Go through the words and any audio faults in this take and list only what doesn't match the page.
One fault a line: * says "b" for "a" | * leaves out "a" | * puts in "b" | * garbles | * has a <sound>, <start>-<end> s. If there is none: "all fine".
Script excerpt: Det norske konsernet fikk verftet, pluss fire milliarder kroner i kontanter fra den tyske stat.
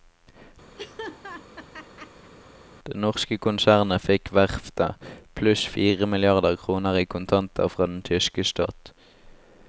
* has a laugh, 0.8-2.3 s